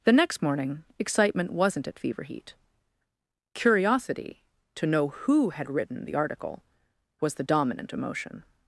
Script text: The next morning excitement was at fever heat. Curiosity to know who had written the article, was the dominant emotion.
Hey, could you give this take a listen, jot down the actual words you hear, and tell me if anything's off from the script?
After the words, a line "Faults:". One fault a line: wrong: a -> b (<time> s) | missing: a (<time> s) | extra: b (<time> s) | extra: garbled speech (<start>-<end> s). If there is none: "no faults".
The next morning excitement wasn't at fever heat. Curiosity to know who had written the article, was the dominant emotion.
Faults:
wrong: was -> wasn't (1.5 s)